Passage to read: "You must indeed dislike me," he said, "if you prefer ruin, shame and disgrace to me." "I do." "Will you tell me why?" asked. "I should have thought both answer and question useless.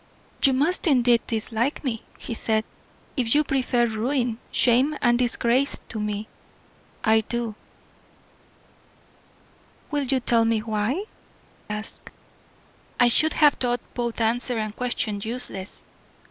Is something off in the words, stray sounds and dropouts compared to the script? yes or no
no